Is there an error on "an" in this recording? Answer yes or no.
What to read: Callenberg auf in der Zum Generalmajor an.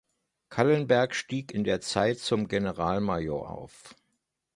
yes